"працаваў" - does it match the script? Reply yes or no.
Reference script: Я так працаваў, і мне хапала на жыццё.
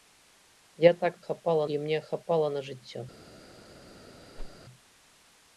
no